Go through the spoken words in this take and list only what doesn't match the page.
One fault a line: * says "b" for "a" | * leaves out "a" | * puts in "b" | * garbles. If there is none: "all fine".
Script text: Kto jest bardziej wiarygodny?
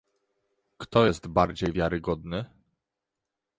all fine